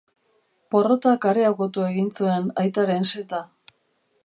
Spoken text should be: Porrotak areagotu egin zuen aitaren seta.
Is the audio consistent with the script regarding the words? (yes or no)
yes